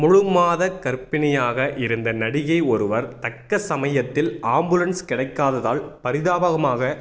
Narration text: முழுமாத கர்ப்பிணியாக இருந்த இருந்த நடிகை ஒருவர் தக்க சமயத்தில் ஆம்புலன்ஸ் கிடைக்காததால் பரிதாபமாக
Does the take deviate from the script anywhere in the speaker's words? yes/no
yes